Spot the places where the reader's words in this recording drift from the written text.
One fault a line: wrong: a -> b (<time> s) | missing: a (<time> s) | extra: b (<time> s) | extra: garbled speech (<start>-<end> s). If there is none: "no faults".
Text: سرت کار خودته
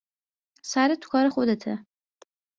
extra: تو (1.0 s)